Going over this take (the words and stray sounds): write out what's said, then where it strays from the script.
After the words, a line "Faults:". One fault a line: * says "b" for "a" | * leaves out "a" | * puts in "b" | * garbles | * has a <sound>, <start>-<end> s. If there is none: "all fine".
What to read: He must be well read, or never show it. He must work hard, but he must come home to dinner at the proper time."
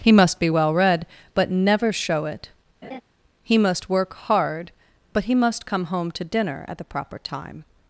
He must be well read, but never show it. He must work hard, but he must come home to dinner at the proper time."
Faults:
* says "but" for "or"
* has a laugh, 2.8-3.0 s